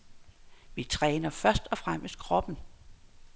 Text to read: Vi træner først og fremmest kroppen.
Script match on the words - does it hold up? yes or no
yes